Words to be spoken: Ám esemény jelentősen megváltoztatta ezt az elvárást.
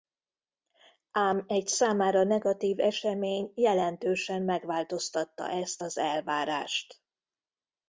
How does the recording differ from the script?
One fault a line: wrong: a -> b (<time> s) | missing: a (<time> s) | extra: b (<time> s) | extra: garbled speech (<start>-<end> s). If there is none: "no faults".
extra: egy számára negatív (1.5 s)